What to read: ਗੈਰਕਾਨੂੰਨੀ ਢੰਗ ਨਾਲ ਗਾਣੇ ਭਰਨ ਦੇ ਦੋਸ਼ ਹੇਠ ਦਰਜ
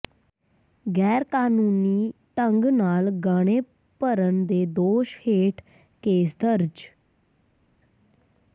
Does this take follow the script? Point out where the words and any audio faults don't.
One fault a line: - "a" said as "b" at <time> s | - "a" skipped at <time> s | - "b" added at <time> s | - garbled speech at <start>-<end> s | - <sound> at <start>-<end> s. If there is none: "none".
- "ਕੇਸ" added at 6.0 s